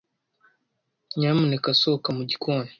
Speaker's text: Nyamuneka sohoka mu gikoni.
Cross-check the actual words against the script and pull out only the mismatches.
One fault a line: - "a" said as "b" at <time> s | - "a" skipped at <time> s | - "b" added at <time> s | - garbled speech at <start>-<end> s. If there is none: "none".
none